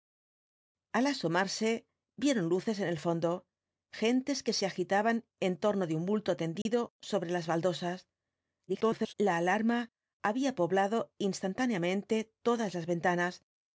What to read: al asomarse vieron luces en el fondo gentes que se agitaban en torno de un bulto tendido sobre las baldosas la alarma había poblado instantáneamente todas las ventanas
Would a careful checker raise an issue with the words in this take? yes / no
yes